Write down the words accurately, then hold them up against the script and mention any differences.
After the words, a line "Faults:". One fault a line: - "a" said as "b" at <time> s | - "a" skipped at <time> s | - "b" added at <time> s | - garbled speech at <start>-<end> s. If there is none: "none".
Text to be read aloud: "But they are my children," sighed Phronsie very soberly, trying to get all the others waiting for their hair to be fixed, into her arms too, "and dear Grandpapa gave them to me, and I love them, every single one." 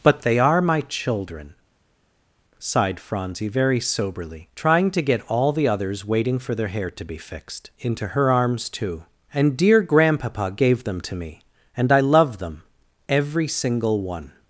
"But they are my children," sighed Phronsie very soberly, trying to get all the others waiting for their hair to be fixed, into her arms too, "and dear Grandpapa gave them to me, and I love them, every single one."
Faults:
none